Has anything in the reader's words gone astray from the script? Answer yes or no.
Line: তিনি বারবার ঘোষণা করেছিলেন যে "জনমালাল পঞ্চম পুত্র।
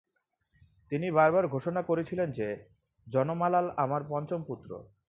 yes